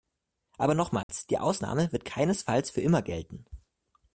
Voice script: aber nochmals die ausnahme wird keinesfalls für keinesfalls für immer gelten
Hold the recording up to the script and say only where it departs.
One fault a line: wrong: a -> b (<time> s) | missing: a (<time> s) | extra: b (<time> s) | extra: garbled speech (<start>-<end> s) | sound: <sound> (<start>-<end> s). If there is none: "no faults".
sound: dropout (1.0-1.1 s)
missing: keinesfalls für (2.8 s)